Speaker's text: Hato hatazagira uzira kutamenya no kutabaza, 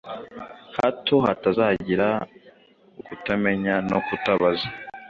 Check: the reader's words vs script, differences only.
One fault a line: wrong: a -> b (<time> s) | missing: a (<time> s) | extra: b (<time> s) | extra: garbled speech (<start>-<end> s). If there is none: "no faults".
missing: uzira (2.1 s)